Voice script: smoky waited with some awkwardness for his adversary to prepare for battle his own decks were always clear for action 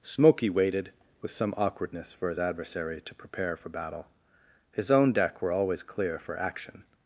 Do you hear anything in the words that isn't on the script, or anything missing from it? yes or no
yes